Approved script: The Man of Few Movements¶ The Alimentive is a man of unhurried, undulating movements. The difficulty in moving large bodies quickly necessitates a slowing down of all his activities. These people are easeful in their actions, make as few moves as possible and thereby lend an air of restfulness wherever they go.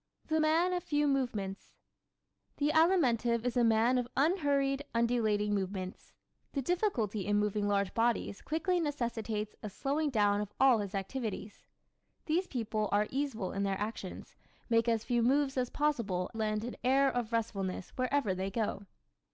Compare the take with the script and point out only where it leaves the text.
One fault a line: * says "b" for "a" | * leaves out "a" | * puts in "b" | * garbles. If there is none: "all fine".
* leaves out "and thereby"